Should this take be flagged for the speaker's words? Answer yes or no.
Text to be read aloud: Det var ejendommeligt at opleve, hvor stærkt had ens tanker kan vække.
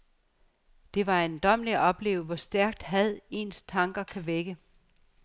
no